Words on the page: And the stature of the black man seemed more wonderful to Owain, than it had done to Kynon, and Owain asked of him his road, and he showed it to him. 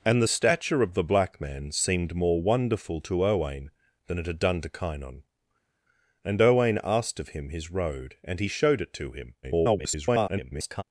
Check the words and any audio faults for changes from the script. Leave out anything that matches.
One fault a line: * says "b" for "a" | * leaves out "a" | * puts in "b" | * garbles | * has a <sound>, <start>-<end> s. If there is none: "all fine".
* garbles